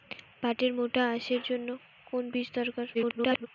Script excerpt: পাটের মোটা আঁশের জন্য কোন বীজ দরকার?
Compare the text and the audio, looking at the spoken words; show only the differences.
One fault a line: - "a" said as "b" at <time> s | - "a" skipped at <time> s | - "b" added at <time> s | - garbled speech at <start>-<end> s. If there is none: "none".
- garbled speech at 2.9-3.5 s